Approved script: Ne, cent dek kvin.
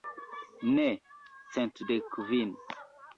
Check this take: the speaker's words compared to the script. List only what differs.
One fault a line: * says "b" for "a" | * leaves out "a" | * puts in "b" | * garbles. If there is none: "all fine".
all fine